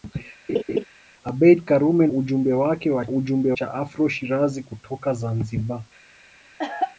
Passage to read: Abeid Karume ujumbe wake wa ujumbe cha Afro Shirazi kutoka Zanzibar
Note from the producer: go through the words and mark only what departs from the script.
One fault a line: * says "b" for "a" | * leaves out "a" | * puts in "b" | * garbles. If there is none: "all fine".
all fine